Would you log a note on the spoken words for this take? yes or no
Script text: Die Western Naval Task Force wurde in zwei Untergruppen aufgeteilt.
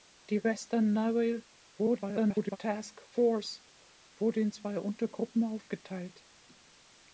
yes